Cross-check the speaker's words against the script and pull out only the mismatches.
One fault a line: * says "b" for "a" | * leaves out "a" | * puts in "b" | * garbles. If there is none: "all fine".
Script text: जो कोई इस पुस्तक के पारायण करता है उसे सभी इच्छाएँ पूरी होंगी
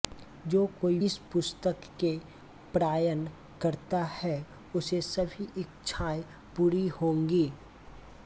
all fine